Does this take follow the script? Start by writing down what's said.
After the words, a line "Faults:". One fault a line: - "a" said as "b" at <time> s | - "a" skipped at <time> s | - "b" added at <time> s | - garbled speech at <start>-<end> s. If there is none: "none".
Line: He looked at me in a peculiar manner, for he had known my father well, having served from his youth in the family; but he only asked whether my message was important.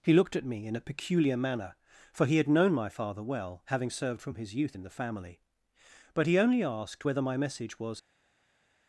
He looked at me in a peculiar manner, for he had known my father well, having served from his youth in the family; but he only asked whether my message was.
Faults:
- "important" skipped at 7.9 s